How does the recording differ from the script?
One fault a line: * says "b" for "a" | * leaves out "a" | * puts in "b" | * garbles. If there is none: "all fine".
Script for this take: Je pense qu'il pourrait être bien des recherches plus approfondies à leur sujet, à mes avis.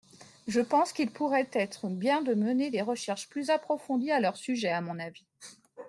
* puts in "de mener"
* says "mon" for "mes"